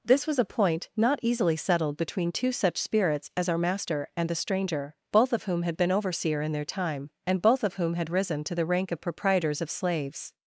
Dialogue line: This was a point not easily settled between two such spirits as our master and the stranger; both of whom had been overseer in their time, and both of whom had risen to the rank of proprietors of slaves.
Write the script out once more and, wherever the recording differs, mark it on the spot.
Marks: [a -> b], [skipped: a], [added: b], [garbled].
This was a point not easily settled between two such spirits as our master and the stranger; both of whom had been overseer in their time, and both of whom had risen to the rank of proprietors of slaves.